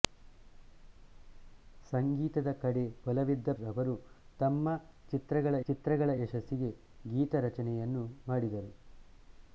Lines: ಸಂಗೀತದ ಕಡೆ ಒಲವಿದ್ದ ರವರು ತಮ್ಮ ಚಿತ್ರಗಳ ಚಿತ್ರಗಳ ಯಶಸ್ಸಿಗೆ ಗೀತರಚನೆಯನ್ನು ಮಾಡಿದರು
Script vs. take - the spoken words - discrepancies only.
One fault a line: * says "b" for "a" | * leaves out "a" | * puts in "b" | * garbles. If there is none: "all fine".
all fine